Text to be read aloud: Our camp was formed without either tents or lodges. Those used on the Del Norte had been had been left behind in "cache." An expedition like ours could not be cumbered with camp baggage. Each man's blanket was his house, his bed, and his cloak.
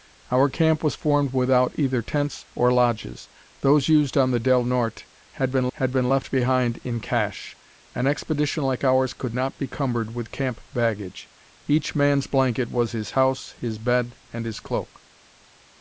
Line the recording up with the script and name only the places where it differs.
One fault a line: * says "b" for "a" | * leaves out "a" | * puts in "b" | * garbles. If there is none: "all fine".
all fine